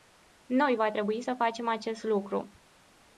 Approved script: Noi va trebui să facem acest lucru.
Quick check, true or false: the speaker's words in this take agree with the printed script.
true